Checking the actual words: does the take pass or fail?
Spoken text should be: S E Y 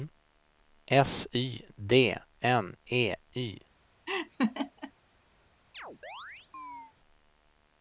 fail